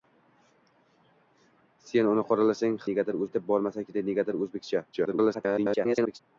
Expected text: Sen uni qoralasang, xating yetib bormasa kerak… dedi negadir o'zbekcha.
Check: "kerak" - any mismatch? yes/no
yes